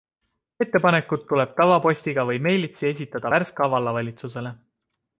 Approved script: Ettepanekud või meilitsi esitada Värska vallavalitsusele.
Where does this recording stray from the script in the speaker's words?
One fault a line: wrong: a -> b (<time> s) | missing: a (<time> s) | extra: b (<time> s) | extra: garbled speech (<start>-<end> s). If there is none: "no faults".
extra: tuleb tavapostiga (1.3 s)